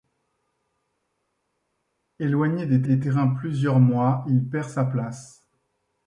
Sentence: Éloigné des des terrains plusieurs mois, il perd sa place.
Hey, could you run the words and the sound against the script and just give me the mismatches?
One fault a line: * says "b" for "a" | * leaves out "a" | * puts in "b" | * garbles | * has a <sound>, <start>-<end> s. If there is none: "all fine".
all fine